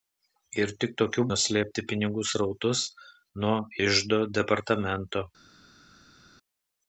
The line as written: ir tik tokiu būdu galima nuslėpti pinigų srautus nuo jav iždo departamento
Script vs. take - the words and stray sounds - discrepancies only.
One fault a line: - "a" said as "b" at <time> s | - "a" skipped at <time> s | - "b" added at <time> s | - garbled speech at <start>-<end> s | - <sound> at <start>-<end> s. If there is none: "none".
- "būdu galima" skipped at 1.2 s
- "jav" skipped at 3.6 s